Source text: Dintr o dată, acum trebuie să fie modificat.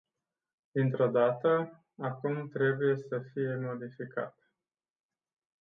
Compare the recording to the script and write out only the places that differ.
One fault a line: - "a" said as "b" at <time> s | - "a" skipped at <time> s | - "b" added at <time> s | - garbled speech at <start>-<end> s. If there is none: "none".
none